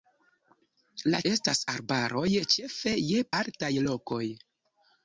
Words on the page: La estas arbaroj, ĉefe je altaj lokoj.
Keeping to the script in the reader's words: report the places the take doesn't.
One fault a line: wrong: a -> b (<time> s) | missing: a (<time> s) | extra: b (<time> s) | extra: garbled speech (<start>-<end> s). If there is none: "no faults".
no faults